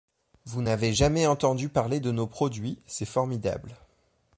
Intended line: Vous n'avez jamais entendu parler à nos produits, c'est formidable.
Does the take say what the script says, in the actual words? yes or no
no